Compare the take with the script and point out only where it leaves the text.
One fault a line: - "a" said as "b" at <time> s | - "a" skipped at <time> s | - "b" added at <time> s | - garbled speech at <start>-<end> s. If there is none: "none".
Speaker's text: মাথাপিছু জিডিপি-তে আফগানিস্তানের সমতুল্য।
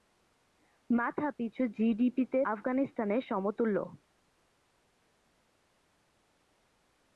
none